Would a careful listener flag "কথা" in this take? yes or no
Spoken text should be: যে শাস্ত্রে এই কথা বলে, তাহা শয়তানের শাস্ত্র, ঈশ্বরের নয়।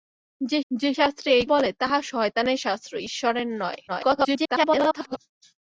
yes